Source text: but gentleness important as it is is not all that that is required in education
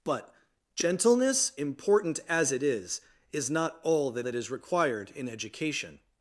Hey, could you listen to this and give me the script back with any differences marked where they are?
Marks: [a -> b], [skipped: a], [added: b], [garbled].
but gentleness important as it is is not all that that is required in education